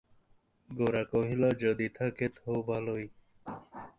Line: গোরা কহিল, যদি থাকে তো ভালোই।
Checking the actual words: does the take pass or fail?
pass